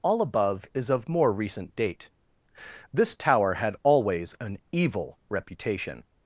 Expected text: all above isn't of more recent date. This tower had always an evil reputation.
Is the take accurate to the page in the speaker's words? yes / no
no